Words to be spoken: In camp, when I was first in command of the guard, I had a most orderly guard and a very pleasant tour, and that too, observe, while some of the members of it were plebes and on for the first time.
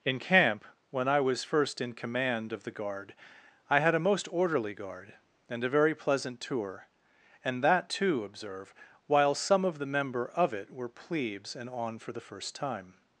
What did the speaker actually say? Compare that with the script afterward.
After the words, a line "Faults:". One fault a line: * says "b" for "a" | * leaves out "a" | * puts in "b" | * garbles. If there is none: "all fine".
In camp, when I was first in command of the guard, I had a most orderly guard and a very pleasant tour, and that too, observe, while some of the member of it were plebes and on for the first time.
Faults:
* says "member" for "members"